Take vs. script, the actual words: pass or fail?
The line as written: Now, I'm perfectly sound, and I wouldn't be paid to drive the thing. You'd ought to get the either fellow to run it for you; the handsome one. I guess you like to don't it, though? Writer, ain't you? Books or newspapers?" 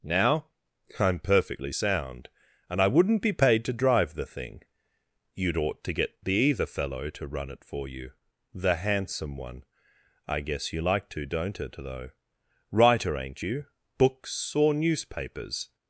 pass